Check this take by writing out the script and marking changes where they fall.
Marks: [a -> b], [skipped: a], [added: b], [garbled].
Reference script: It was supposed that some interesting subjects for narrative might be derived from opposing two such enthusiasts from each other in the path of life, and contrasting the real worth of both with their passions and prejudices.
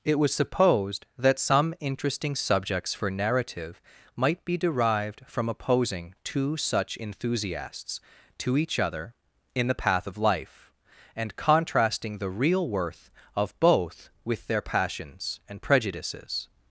It was supposed that some interesting subjects for narrative might be derived from opposing two such enthusiasts [from -> to] each other in the path of life, and contrasting the real worth of both with their passions and prejudices.